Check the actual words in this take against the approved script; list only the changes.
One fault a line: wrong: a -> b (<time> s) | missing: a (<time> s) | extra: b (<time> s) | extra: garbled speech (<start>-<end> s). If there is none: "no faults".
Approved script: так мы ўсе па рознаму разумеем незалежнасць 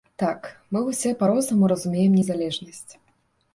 no faults